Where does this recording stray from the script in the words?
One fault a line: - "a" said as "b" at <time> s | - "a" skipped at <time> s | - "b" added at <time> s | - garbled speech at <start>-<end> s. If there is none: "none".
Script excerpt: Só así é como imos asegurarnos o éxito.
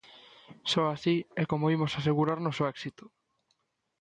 none